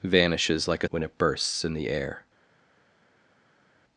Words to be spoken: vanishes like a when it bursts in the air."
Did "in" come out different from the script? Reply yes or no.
no